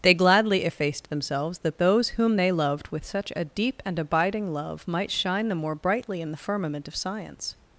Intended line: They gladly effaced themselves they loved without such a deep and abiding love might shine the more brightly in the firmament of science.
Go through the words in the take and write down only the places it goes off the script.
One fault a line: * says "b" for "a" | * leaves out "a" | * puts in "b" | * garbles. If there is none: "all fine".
* puts in "that those whom"
* says "with" for "without"